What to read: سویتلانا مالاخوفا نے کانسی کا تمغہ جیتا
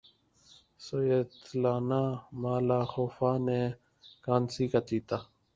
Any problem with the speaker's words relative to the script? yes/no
yes